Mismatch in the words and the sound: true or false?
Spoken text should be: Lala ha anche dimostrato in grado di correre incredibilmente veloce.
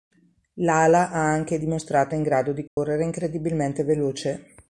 true